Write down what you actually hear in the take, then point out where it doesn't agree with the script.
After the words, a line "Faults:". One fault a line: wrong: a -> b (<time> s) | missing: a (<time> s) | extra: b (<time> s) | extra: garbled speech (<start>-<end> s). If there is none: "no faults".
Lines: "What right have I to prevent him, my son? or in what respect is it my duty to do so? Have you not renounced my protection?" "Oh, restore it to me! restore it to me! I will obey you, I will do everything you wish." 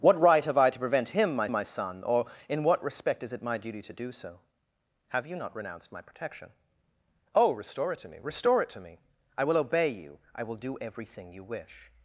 "What right have I to prevent him, my my son? or in what respect is it my duty to do so? Have you not renounced my protection?" "Oh, restore it to me! restore it to me! I will obey you, I will do everything you wish."
Faults:
extra: my (1.5 s)